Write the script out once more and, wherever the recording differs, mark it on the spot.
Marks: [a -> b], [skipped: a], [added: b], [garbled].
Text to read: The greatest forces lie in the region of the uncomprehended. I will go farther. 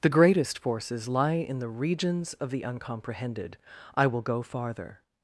The greatest forces lie in the [region -> regions] of the uncomprehended. I will go farther.